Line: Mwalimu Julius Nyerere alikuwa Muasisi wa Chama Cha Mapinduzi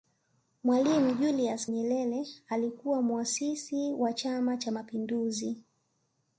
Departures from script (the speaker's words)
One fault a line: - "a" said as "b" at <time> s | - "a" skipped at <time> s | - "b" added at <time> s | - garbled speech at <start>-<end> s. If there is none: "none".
none